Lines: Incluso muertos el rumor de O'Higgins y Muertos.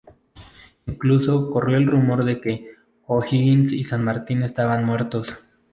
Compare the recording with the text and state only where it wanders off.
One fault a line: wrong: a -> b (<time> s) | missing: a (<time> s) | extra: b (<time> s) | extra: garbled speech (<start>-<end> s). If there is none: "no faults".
wrong: muertos -> corrió (1.5 s)
extra: que (2.4 s)
extra: San Martín estaban (3.8 s)